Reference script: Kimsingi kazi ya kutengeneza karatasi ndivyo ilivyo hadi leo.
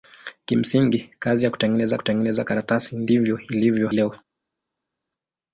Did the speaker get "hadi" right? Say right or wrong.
wrong